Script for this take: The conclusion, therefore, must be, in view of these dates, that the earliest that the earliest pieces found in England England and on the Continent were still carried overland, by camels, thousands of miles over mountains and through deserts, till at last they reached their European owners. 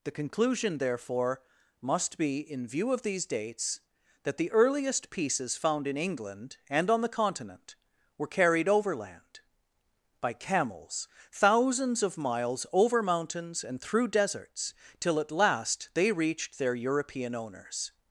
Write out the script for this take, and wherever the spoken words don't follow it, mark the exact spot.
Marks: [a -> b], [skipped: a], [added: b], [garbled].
The conclusion, therefore, must be, in view of these dates, that the earliest [skipped: that the earliest] pieces found in England [skipped: England] and on the Continent were [skipped: still] carried overland, by camels, thousands of miles over mountains and through deserts, till at last they reached their European owners.